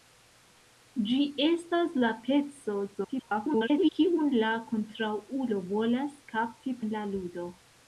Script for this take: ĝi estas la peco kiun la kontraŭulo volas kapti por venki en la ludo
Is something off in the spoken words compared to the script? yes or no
yes